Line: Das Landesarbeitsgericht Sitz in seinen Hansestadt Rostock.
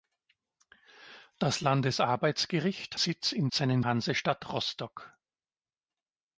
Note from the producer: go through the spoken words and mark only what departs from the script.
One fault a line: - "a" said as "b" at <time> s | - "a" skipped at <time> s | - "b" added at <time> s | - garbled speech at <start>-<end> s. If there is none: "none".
none